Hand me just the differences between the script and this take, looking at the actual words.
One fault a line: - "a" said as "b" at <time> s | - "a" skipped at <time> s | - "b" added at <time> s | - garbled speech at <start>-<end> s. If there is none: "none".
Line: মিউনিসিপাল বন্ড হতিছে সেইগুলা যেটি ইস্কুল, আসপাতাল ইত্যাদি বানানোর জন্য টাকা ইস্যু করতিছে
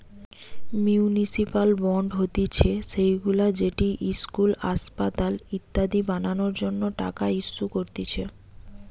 none